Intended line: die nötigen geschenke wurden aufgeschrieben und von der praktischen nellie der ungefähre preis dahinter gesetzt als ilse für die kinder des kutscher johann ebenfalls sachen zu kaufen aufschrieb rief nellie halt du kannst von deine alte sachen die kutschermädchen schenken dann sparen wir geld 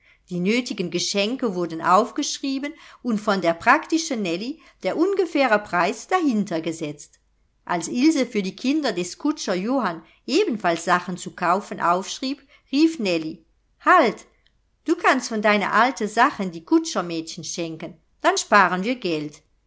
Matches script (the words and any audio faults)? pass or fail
pass